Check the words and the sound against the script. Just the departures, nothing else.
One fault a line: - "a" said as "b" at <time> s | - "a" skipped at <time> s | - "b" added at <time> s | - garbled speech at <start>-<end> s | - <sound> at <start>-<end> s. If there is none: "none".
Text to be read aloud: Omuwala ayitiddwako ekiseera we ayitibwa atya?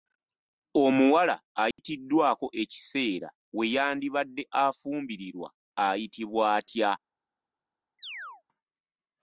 - dropout at 1.7-1.8 s
- "yandibadde afumbirirwa" added at 3.7 s
- chirp at 8.0-8.4 s